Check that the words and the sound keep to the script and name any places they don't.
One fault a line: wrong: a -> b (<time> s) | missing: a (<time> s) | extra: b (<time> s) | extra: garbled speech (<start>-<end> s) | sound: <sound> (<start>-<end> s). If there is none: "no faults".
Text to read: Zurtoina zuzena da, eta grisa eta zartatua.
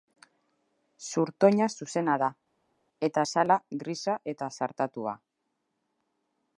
extra: azala (3.3 s)